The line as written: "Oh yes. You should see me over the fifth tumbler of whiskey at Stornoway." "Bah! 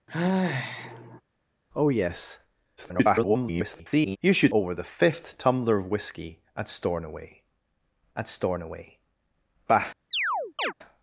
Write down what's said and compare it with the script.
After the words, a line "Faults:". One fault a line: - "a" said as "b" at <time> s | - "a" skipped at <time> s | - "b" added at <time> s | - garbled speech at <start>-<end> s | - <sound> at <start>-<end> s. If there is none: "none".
"Oh yes. [garbled] You should over the fifth tumbler of whiskey at Stornoway at Stornoway." "Bah!
Faults:
- sigh at 0.1-1.2 s
- garbled speech at 2.8-4.2 s
- "see me" skipped at 4.5 s
- "at Stornoway" added at 8.2 s
- chirp at 10.1-10.7 s